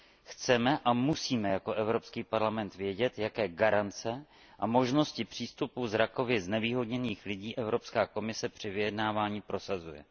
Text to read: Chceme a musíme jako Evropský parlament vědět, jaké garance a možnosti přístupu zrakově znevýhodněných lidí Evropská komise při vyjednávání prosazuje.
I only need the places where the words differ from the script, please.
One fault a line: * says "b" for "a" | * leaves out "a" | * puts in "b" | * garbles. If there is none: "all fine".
all fine